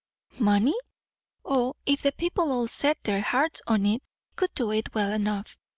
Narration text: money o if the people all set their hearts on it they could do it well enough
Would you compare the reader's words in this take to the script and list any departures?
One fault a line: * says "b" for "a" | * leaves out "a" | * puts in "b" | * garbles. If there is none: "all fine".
* leaves out "they"